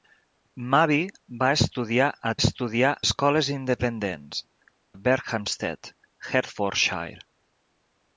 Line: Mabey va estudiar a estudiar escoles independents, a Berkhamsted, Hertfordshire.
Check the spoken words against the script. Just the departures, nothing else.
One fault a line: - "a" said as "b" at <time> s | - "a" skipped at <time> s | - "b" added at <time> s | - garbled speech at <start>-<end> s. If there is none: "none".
none